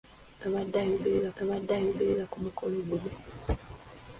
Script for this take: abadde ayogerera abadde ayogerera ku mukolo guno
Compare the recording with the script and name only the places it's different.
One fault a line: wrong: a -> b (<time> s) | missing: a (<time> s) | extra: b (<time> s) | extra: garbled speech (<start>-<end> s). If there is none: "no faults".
no faults